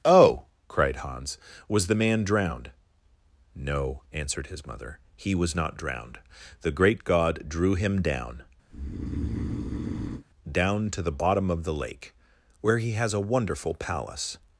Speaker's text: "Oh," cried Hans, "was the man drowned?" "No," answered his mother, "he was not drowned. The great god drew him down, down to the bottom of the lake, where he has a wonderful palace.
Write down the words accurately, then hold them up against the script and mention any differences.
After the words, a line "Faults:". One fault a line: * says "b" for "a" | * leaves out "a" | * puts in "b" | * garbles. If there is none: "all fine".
"Oh," cried Hans, "was the man drowned?" "No," answered his mother, "he was not drowned. The great god drew him down, down to the bottom of the lake, where he has a wonderful palace.
Faults:
all fine